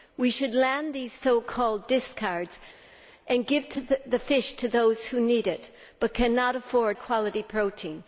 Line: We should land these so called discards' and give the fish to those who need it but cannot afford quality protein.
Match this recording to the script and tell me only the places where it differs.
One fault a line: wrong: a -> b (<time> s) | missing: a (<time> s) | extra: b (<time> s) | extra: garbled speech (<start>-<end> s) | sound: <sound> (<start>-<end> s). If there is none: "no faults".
no faults